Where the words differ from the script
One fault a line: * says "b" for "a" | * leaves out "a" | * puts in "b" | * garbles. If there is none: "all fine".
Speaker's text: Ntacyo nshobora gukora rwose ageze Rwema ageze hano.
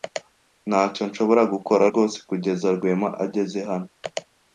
* says "kugeza" for "ageze"